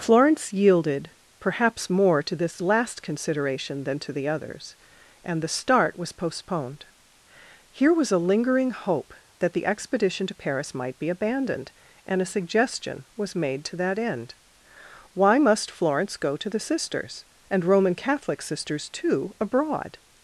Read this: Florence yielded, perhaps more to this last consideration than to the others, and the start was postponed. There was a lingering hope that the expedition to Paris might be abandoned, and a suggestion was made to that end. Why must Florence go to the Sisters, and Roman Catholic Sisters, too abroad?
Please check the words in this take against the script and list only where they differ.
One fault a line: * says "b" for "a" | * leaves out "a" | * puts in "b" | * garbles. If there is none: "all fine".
* says "Here" for "There"